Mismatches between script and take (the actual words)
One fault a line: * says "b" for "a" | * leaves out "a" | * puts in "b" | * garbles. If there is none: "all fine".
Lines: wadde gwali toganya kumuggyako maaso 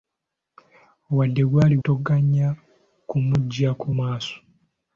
all fine